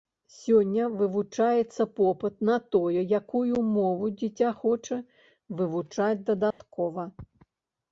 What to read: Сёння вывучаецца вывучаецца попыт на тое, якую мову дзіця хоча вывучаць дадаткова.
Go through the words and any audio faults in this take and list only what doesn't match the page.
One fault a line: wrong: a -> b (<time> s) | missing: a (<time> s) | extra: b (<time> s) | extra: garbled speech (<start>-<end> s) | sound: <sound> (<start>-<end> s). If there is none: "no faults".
missing: вывучаецца (1.9 s)
sound: dropout (6.5-6.6 s)